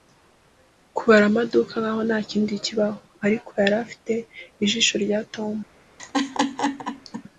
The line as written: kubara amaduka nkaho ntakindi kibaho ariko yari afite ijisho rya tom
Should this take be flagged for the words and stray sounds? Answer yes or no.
yes